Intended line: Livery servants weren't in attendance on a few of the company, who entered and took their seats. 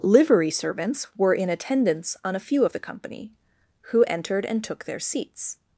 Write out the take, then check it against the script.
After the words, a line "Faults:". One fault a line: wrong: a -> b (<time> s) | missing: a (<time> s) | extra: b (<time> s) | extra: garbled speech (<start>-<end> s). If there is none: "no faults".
Livery servants were in attendance on a few of the company, who entered and took their seats.
Faults:
wrong: weren't -> were (1.1 s)